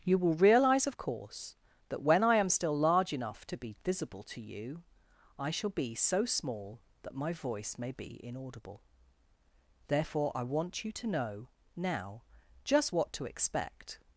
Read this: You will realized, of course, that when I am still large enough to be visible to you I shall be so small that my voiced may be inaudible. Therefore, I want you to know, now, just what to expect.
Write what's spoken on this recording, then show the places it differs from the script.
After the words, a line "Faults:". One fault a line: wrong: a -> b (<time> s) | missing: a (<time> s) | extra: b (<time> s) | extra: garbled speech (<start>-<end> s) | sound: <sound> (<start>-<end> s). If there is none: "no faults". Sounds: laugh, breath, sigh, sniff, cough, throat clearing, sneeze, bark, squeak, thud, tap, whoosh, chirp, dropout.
You will realize, of course, that when I am still large enough to be visible to you I shall be so small that my voice may be inaudible. Therefore, I want you to know, now, just what to expect.
Faults:
wrong: realized -> realize (0.3 s)
wrong: voiced -> voice (7.3 s)